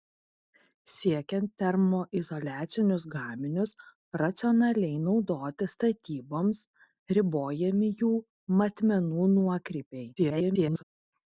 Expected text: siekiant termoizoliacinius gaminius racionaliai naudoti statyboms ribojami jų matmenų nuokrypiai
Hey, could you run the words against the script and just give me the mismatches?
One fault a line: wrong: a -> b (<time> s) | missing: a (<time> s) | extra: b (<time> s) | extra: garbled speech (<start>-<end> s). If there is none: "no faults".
extra: garbled speech (10.2-10.8 s)